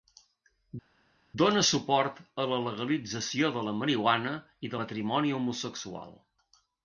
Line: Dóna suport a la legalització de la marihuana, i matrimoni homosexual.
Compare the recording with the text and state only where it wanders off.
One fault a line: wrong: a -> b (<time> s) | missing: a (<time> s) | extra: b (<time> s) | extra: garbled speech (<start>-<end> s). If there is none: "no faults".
no faults